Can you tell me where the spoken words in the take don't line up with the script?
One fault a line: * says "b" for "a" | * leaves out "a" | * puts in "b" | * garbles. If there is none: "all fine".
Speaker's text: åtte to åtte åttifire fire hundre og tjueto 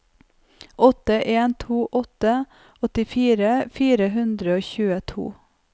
* puts in "en"